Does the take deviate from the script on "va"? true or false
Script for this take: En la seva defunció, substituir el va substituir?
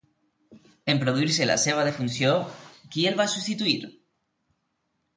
false